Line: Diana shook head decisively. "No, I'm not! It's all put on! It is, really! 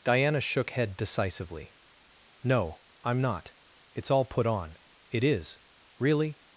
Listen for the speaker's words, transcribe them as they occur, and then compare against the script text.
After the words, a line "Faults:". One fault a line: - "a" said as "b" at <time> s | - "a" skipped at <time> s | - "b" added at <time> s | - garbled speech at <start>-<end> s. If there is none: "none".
Diana shook head decisively. "No, I'm not! It's all put on! It is, really!
Faults:
none